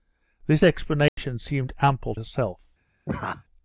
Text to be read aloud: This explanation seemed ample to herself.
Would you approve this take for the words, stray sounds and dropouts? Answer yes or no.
no